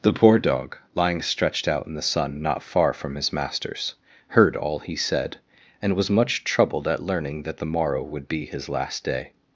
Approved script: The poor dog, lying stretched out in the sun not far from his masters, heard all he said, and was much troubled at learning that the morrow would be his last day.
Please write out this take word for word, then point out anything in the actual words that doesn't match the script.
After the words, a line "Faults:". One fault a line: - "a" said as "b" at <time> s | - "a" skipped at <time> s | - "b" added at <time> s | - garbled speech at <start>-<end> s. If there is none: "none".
The poor dog, lying stretched out in the sun not far from his masters, heard all he said, and was much troubled at learning that the morrow would be his last day.
Faults:
none